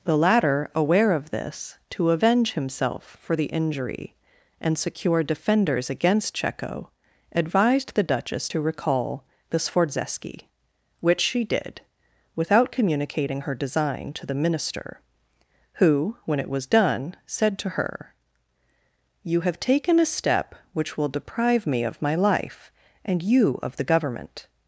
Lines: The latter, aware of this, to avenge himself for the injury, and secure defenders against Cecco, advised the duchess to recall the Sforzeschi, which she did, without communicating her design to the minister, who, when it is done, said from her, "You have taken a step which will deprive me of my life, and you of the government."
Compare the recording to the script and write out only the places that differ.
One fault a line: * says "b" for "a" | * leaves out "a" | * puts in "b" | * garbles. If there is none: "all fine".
* says "was" for "is"
* says "to" for "from"